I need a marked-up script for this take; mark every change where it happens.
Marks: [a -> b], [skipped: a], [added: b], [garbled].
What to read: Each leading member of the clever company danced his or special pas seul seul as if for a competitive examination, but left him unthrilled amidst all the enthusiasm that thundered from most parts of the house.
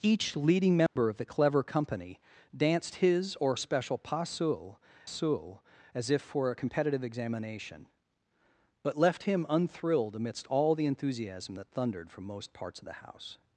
Each leading member of the clever company danced his or special pas seul seul as if for a competitive examination, but left him unthrilled amidst all the enthusiasm that thundered from most parts of the house.